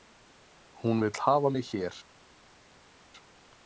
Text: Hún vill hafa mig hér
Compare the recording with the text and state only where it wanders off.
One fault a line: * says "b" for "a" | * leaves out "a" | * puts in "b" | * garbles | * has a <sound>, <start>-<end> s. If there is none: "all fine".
all fine